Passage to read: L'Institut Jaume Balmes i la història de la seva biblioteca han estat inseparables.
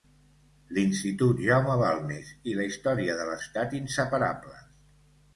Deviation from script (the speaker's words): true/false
true